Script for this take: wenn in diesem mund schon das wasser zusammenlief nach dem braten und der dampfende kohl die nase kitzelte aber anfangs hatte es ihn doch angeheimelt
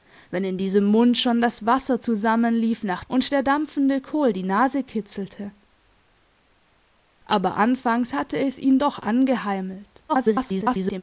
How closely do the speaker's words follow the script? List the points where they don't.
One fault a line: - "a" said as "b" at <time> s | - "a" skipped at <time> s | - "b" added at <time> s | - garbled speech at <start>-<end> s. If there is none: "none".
- "dem braten" skipped at 3.0 s
- garbled speech at 10.1-11.0 s